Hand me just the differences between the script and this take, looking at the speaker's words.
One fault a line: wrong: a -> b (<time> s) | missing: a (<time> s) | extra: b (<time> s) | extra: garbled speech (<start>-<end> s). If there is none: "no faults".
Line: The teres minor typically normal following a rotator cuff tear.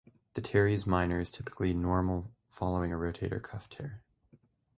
extra: is (1.2 s)